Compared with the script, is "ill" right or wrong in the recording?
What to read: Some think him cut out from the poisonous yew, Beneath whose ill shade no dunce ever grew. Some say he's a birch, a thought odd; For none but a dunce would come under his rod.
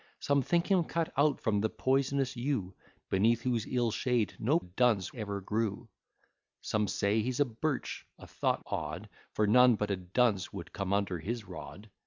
right